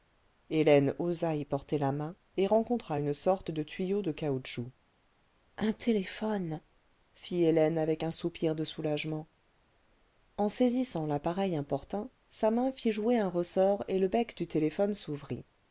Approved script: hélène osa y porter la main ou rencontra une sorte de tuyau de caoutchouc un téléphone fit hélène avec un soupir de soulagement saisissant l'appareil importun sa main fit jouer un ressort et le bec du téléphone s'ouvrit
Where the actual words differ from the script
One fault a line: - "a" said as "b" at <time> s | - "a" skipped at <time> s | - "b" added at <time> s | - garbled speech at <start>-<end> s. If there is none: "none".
- "ou" said as "et" at 2.4 s
- "en" added at 10.4 s